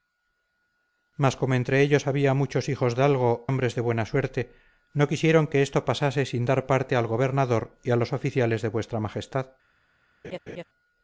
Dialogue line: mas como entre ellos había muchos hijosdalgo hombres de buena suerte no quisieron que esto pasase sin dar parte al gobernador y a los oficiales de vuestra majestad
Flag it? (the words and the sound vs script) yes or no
yes